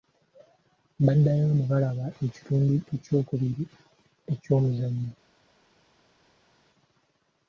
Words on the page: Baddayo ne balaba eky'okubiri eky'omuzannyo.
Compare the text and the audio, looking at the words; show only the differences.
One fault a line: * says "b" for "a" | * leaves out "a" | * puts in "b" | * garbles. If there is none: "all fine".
* puts in "ekitundu"